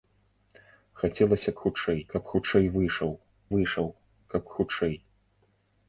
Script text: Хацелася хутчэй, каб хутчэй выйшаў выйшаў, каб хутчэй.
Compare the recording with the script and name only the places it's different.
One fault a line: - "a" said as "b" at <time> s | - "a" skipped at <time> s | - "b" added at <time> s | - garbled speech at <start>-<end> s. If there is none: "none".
none